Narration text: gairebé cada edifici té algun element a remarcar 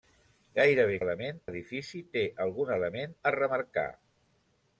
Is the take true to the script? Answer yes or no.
no